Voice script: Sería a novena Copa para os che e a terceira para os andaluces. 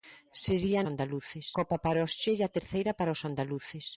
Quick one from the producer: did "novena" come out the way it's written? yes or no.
no